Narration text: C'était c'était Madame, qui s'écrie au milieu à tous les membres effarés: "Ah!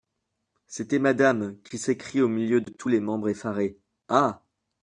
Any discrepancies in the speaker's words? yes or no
yes